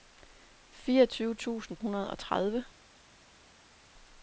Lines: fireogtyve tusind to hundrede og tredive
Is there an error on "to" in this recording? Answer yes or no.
yes